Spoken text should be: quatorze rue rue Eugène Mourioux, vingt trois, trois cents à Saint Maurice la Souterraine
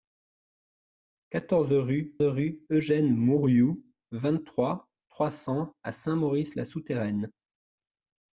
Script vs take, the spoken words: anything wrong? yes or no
no